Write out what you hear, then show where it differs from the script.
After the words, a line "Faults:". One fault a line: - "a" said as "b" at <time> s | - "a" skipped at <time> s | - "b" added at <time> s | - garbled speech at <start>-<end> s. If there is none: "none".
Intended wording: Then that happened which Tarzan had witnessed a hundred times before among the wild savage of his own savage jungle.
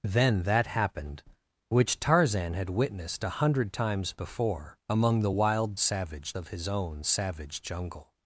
Then that happened which Tarzan had witnessed a hundred times before among the wild savage of his own savage jungle.
Faults:
none